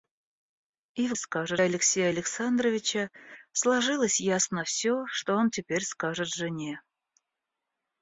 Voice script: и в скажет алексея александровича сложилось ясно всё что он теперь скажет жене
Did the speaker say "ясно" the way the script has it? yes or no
yes